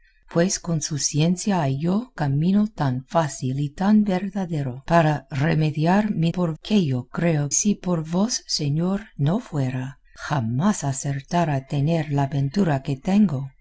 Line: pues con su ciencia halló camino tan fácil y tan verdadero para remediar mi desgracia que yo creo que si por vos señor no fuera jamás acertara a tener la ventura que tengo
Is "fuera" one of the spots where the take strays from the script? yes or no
no